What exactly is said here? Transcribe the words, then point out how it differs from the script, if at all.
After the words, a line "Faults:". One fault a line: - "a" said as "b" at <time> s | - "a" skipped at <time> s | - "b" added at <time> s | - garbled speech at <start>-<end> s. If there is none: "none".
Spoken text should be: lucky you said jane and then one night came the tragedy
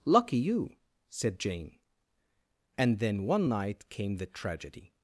lucky you said jane and then one night came the tragedy
Faults:
none